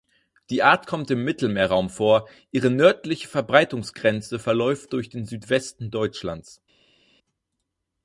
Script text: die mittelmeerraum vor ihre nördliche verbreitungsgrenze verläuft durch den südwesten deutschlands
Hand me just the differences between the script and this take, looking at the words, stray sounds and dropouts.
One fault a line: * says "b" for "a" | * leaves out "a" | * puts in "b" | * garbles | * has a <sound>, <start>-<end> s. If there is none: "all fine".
* puts in "art kommt im"